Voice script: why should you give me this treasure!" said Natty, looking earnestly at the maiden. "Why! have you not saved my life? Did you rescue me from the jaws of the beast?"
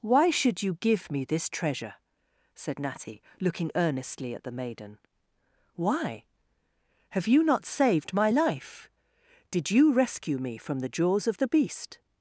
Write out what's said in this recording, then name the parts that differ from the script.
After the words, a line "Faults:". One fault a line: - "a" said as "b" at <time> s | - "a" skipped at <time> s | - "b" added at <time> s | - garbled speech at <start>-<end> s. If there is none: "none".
why should you give me this treasure!" said Natty, looking earnestly at the maiden. "Why! have you not saved my life? Did you rescue me from the jaws of the beast?"
Faults:
none